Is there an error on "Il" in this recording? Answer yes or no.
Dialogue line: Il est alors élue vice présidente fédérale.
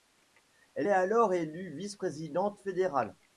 yes